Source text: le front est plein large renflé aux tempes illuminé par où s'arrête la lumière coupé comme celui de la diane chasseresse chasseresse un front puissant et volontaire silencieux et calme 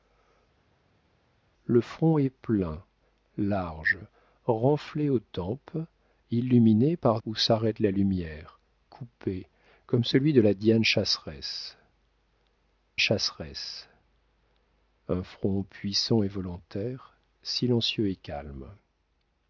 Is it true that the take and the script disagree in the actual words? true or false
false